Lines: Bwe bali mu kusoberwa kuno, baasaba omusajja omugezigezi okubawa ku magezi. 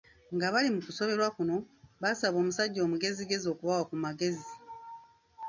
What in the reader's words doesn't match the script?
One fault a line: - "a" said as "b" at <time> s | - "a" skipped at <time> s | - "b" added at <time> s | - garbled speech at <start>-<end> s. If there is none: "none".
- "Bwe" said as "Nga" at 0.3 s